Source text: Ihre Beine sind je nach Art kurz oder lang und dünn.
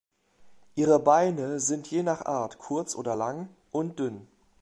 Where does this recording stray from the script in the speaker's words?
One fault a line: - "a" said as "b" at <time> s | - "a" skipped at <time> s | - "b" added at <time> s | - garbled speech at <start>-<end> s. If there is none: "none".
none